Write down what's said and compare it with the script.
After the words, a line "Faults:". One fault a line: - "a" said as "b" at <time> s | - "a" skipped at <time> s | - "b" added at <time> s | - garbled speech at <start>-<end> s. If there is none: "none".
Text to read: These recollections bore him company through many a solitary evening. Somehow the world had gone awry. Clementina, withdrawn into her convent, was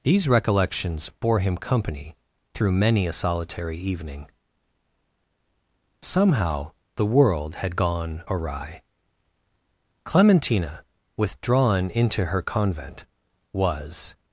These recollections bore him company through many a solitary evening. Somehow the world had gone awry. Clementina, withdrawn into her convent, was
Faults:
none